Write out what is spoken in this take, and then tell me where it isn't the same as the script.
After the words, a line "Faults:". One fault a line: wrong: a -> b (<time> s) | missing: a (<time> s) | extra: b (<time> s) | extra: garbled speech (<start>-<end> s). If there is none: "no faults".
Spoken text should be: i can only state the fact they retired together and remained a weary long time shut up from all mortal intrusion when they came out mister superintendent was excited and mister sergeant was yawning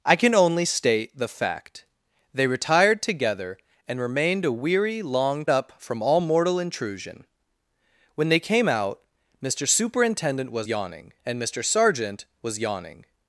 i can only state the fact they retired together and remained a weary long up from all mortal intrusion when they came out mister superintendent was yawning and mister sergeant was yawning
Faults:
missing: time shut (5.5 s)
wrong: excited -> yawning (10.7 s)